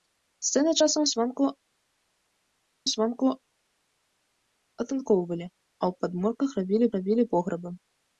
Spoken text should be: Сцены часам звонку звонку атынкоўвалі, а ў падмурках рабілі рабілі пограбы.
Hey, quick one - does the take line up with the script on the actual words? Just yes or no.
yes